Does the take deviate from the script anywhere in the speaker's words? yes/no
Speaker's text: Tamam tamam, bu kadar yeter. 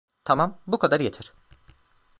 yes